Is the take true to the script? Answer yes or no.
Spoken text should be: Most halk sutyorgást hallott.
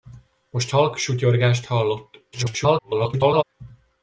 no